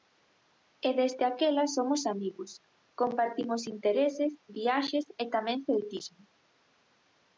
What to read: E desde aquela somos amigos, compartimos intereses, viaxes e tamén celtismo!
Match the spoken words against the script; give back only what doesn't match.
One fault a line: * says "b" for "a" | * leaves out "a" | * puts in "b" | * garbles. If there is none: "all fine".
all fine